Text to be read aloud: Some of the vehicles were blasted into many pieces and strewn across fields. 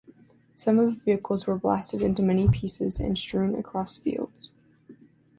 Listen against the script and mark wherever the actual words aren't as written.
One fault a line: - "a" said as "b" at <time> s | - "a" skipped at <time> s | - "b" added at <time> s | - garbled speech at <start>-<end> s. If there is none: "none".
none